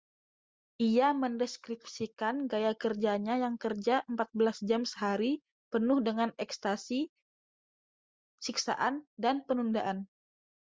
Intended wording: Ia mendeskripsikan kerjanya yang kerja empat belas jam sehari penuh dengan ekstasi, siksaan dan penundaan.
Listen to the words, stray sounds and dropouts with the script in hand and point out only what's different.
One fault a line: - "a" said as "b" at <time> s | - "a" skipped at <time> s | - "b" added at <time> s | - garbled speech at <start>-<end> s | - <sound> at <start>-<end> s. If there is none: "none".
- "gaya" added at 2.5 s